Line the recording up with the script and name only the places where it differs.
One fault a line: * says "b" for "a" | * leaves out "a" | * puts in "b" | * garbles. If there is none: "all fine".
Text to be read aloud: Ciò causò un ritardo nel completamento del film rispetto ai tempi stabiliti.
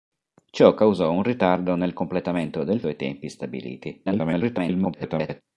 * leaves out "film rispetto"
* garbles